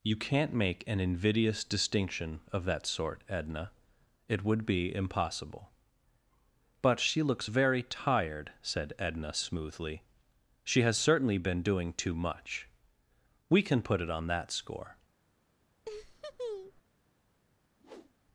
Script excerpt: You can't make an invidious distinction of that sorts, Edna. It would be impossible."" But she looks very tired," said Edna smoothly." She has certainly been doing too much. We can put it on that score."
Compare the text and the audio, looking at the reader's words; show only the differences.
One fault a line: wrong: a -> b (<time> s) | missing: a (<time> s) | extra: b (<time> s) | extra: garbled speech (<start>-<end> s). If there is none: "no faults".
wrong: sorts -> sort (2.9 s)